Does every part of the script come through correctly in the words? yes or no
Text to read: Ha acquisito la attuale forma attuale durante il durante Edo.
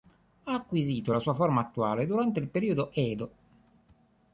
no